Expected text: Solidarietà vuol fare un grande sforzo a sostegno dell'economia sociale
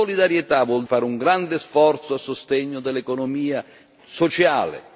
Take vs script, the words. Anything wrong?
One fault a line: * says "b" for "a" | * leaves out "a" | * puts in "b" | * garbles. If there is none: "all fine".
all fine